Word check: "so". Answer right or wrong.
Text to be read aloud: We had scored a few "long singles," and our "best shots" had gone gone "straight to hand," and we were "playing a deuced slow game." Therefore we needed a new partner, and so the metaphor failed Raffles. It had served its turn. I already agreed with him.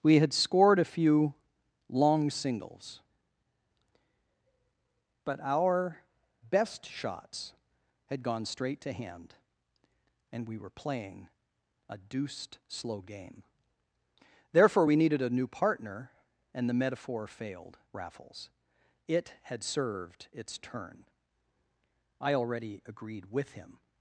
wrong